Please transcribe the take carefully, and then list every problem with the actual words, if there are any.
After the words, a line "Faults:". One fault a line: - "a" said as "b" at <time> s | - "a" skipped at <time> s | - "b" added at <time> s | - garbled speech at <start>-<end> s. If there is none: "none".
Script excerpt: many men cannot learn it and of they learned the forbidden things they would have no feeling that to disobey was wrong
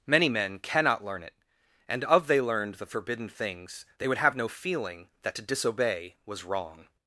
many men cannot learn it and of they learned the forbidden things they would have no feeling that to disobey was wrong
Faults:
none